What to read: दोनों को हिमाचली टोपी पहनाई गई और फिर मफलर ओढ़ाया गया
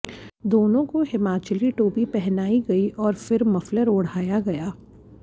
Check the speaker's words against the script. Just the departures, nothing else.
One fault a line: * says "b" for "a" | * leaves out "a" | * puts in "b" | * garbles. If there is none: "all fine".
all fine